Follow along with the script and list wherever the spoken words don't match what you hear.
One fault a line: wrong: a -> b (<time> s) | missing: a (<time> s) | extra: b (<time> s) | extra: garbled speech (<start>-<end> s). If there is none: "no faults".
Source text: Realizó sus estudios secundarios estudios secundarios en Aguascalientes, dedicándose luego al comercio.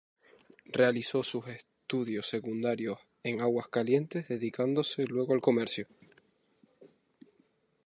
missing: estudios secundarios (3.0 s)